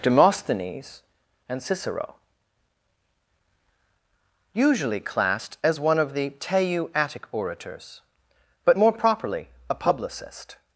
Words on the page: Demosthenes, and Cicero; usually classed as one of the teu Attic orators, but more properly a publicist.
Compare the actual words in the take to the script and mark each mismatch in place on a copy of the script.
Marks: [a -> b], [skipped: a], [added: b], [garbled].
Demosthenes, and Cicero; usually classed as one of the teu Attic orators, but more properly a publicist.